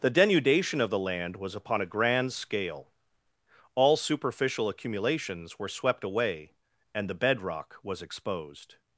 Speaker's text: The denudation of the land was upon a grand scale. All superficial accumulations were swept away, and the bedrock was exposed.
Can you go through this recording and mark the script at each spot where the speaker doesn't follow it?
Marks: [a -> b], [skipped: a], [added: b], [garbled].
The denudation of the land was upon a grand scale. All superficial accumulations were swept away, and the bedrock was exposed.